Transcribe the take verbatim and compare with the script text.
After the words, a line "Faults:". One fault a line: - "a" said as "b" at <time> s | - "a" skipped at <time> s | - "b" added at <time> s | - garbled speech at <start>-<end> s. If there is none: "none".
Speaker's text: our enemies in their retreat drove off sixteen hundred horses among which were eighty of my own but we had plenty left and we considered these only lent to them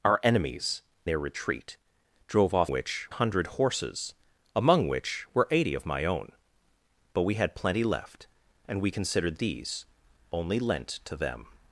our enemies their retreat drove off which hundred horses among which were eighty of my own but we had plenty left and we considered these only lent to them
Faults:
- "in" skipped at 0.8 s
- "sixteen" said as "which" at 2.7 s